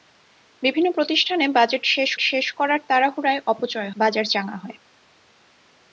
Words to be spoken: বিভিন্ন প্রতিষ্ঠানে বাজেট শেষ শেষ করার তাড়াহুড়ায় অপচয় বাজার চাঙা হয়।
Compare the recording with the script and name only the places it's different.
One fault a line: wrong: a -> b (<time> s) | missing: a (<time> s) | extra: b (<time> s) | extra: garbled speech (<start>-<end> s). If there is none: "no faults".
no faults